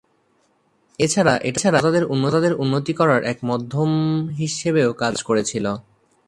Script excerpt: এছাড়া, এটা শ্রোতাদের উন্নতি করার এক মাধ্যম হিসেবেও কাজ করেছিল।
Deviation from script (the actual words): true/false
false